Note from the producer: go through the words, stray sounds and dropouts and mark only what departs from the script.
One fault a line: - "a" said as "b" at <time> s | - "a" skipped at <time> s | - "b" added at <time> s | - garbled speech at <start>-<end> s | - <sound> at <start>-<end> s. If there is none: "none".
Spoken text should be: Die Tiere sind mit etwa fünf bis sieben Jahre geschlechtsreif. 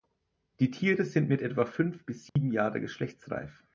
- dropout at 2.3-2.4 s